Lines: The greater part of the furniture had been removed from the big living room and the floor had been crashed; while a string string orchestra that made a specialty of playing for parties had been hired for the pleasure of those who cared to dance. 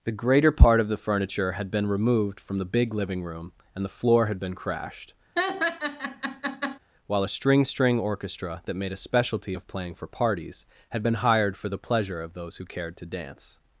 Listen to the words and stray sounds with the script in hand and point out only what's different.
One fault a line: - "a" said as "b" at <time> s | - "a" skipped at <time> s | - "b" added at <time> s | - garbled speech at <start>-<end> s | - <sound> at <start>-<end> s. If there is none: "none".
- laugh at 5.4-6.8 s